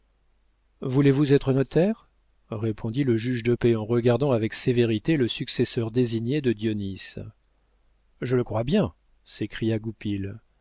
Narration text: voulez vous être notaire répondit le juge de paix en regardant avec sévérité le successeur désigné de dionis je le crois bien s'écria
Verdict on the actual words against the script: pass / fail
pass